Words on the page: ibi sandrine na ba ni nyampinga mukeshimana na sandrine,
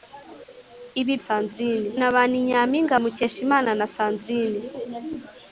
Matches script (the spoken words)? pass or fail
pass